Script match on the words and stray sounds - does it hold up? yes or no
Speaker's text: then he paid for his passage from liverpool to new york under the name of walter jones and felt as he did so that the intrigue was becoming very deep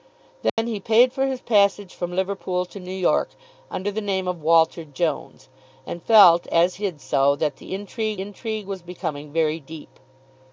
no